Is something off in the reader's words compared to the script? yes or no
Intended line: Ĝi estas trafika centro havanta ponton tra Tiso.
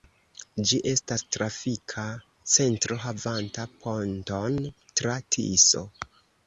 no